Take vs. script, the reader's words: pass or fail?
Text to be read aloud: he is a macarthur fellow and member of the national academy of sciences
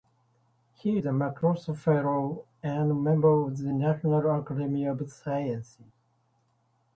pass